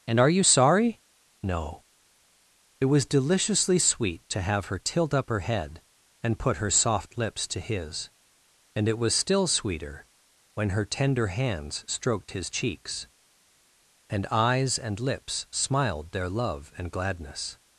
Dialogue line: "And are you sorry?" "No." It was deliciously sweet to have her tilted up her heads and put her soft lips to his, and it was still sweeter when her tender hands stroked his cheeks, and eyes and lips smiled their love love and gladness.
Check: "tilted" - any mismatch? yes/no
yes